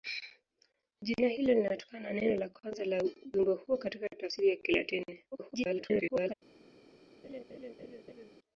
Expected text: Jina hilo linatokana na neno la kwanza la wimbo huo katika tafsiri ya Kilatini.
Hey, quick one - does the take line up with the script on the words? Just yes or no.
no